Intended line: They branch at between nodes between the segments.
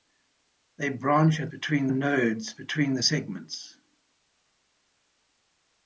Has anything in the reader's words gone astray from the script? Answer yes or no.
no